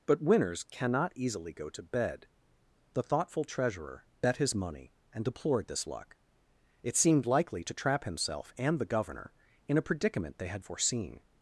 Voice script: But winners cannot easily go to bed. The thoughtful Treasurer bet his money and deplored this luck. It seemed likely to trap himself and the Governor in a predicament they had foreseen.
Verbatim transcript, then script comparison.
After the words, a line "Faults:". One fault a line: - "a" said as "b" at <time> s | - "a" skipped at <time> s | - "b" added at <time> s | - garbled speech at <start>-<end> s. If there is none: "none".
But winners cannot easily go to bed. The thoughtful Treasurer bet his money and deplored this luck. It seemed likely to trap himself and the Governor in a predicament they had foreseen.
Faults:
none